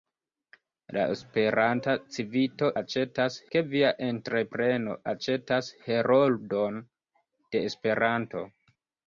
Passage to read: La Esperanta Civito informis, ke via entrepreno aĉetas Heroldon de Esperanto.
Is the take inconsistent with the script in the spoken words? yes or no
yes